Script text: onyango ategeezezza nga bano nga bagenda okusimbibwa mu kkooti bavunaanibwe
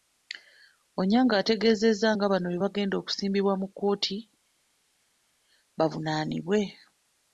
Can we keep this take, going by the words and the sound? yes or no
no